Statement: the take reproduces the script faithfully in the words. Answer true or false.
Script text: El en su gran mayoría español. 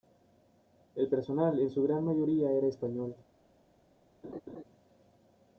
false